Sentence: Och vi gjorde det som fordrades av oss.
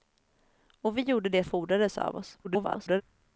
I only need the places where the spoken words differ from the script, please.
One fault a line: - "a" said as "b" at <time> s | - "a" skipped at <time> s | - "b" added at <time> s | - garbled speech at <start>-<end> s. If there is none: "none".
- "som" skipped at 1.4 s
- garbled speech at 2.4-3.0 s